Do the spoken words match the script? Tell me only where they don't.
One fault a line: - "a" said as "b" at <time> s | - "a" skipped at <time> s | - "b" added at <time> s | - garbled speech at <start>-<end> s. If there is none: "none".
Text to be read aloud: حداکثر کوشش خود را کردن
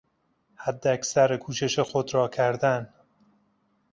none